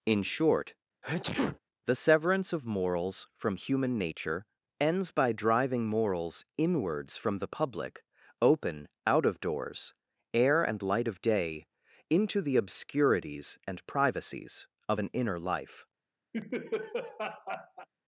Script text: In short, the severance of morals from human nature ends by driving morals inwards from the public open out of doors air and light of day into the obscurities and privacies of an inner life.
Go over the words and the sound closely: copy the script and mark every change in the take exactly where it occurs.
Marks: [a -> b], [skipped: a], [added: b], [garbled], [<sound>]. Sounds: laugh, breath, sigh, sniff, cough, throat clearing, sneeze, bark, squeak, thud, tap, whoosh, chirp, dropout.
In short, [sneeze] the severance of morals from human nature ends by driving morals inwards from the public open out of doors air and light of day into the obscurities and privacies of an inner life. [laugh]